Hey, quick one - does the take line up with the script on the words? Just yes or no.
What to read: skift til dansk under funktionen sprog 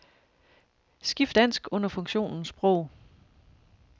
no